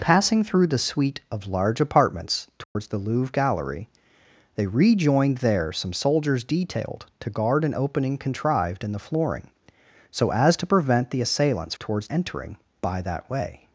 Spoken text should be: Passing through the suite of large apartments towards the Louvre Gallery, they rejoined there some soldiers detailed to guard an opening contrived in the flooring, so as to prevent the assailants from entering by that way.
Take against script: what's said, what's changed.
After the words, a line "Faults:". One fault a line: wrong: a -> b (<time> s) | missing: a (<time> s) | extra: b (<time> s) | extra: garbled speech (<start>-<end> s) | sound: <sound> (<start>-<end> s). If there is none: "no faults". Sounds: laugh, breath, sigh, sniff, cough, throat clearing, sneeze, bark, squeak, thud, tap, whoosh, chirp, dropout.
Passing through the suite of large apartments towards the Louvre Gallery, they rejoined there some soldiers detailed to guard an opening contrived in the flooring, so as to prevent the assailants towards entering by that way.
Faults:
sound: dropout (2.6-2.8 s)
wrong: from -> towards (11.8 s)